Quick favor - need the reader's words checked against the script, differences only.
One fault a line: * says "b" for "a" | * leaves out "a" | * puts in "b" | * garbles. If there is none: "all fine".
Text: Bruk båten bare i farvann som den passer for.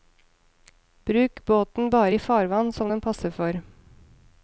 all fine